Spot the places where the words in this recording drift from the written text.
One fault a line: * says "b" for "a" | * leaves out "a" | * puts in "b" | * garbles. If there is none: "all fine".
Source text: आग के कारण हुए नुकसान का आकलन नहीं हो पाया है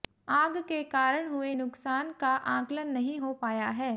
all fine